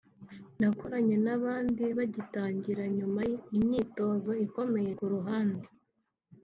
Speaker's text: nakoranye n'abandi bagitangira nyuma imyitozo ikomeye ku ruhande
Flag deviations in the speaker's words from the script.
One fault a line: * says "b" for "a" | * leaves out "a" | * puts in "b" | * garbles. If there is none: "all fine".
all fine